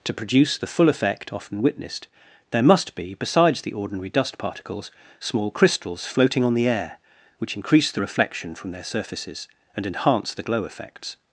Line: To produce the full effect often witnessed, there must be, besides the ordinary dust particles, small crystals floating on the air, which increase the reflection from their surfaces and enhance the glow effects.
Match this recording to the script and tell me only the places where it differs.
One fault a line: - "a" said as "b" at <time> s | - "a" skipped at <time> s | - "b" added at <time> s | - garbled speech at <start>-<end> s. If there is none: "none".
none